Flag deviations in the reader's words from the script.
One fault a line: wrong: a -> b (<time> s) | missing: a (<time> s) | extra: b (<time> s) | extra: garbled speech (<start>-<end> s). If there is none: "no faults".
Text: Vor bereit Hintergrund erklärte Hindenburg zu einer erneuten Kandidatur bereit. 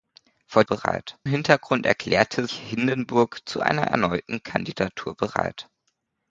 no faults